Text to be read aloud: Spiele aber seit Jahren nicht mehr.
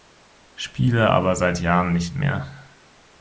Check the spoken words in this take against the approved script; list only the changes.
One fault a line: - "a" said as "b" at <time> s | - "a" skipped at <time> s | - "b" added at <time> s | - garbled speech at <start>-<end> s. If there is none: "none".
none